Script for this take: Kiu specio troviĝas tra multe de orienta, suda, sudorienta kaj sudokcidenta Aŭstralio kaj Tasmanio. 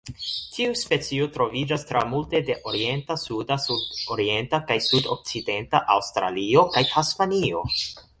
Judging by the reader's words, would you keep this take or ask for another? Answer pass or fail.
fail